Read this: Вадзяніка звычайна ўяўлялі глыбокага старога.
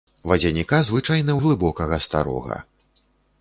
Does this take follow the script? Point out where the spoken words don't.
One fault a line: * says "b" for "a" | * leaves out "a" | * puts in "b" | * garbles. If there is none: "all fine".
* leaves out "ўяўлялі"